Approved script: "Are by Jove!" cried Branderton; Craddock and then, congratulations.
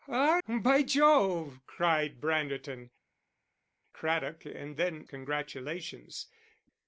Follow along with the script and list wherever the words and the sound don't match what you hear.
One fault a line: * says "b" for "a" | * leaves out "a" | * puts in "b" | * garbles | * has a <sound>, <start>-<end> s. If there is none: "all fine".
all fine